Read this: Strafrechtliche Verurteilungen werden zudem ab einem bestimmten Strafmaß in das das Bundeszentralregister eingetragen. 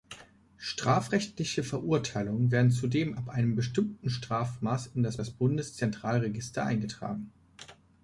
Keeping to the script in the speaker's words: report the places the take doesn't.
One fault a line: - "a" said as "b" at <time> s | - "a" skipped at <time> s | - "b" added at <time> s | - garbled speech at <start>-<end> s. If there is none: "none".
none